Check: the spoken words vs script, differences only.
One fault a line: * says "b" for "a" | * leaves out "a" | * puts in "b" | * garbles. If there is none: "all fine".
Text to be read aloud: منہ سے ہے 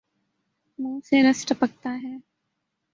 * puts in "رس ٹپکتا"